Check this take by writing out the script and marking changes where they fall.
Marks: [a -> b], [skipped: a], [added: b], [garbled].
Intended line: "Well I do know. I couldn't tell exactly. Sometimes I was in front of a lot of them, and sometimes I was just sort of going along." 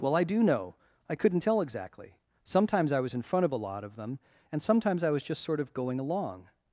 "Well I do know. I couldn't tell exactly. Sometimes I was in front of a lot of them, and sometimes I was just sort of going along."